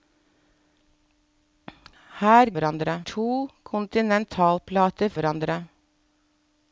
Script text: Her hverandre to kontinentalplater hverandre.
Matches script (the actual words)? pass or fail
pass